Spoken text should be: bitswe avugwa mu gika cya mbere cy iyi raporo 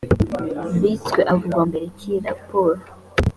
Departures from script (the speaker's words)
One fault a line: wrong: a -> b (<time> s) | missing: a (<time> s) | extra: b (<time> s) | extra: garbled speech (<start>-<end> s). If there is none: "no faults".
missing: mu gika cya (1.6 s)